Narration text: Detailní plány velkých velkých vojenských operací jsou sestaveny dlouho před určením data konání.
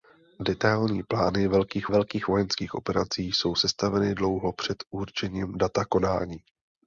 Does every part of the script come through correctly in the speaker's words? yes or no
yes